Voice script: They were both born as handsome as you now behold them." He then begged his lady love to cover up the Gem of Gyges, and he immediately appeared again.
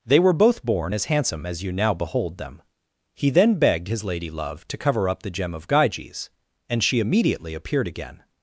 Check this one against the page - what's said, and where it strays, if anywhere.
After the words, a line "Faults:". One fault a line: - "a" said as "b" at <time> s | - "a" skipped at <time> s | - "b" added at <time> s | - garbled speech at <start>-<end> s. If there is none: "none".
They were both born as handsome as you now behold them." He then begged his lady love to cover up the Gem of Gyges, and she immediately appeared again.
Faults:
- "he" said as "she" at 6.8 s